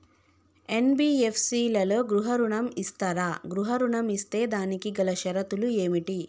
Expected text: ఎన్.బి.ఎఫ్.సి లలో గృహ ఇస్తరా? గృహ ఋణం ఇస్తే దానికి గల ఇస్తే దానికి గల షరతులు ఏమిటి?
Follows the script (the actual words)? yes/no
no